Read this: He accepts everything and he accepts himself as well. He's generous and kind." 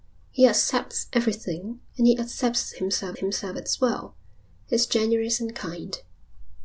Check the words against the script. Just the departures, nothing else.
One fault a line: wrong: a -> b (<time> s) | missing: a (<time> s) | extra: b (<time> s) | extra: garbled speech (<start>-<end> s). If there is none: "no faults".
extra: himself (3.1 s)